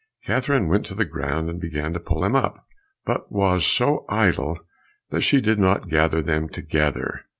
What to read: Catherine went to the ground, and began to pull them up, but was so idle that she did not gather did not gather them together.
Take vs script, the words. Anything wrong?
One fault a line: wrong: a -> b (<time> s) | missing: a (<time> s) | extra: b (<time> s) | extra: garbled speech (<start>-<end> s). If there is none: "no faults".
missing: did not gather (6.2 s)